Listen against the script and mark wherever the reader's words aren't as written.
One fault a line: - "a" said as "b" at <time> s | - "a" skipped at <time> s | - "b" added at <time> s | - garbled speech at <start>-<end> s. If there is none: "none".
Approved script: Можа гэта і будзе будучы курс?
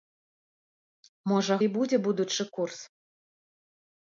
- "гэта" skipped at 1.6 s